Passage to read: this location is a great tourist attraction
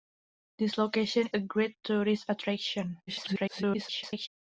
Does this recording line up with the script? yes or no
no